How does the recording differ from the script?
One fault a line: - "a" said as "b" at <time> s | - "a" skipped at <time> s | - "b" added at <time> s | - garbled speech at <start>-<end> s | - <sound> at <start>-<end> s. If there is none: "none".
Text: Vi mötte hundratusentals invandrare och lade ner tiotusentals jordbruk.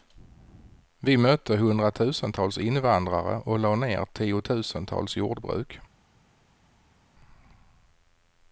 none